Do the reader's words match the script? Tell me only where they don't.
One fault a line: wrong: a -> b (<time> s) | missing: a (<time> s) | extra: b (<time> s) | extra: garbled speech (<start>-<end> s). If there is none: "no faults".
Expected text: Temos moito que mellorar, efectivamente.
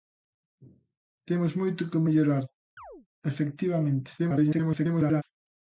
extra: garbled speech (4.2-5.2 s)